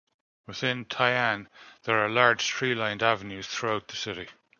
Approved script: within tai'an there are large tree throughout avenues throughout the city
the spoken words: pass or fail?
fail